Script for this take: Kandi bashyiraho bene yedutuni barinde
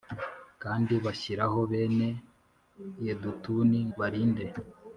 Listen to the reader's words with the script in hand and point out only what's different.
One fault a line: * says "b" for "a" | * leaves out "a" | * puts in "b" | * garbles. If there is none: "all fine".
all fine